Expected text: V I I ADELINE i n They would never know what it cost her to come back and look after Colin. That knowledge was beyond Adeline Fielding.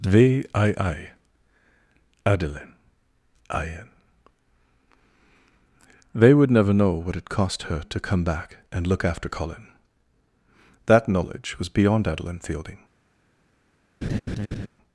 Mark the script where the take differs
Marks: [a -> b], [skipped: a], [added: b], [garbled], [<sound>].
V I I ADELINE i n They would never know what it cost her to come back and look after Colin. That knowledge was beyond Adeline Fielding. [laugh]